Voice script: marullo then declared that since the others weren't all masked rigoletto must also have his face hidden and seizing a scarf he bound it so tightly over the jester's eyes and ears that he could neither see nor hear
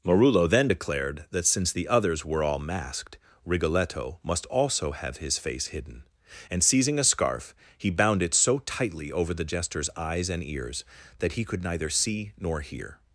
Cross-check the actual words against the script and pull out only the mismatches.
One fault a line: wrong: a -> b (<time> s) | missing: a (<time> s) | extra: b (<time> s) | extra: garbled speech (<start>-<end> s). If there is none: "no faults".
wrong: weren't -> were (2.2 s)